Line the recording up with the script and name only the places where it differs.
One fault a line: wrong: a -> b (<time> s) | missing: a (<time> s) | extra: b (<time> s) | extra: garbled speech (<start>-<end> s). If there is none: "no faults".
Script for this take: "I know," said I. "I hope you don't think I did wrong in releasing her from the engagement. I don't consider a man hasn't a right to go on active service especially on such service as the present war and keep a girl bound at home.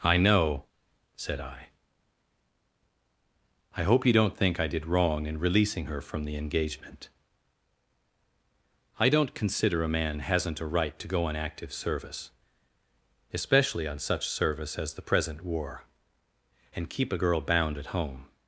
no faults